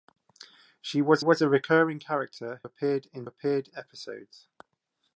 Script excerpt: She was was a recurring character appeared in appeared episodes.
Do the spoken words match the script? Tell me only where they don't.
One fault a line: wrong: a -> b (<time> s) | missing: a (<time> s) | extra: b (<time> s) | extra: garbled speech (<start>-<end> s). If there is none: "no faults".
no faults